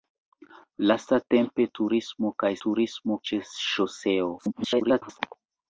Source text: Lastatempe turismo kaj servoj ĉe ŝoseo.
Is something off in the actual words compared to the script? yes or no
yes